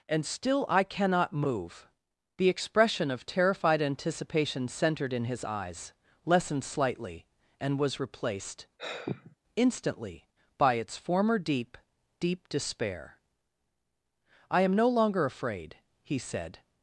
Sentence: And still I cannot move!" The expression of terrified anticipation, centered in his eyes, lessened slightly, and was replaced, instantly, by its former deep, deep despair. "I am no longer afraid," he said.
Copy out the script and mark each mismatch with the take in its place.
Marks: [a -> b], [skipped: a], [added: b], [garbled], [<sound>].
And still I cannot move!" The expression of terrified anticipation, centered in his eyes, lessened slightly, and was replaced, [sigh] instantly, by its former deep, deep despair. "I am no longer afraid," he said.